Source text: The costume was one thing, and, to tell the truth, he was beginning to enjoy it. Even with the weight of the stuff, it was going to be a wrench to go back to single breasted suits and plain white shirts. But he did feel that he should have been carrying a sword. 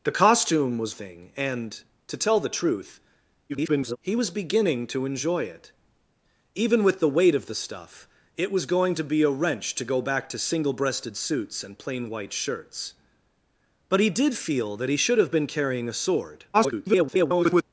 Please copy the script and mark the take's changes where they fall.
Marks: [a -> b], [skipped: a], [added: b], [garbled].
The costume was [skipped: one] thing, and, to tell the truth, [garbled] he was beginning to enjoy it. Even with the weight of the stuff, it was going to be a wrench to go back to single breasted suits and plain white shirts. But he did feel that he should have been carrying a sword. [garbled]